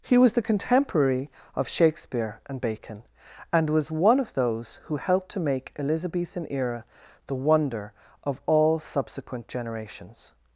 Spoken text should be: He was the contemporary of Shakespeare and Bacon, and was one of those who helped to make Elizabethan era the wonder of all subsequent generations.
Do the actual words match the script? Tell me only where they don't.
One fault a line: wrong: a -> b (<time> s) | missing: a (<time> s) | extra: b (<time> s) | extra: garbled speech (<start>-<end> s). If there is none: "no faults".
no faults